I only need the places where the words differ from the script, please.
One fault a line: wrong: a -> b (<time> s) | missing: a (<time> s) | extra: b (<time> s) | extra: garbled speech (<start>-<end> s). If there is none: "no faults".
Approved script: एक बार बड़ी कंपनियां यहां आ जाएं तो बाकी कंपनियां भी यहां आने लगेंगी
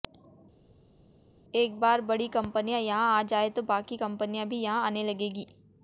no faults